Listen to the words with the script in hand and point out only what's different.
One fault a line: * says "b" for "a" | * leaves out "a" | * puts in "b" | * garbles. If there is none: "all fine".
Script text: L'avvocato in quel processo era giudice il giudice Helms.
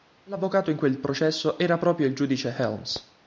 * says "proprio" for "giudice"